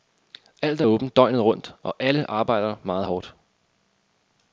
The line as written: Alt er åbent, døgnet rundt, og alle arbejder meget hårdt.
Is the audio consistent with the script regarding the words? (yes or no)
yes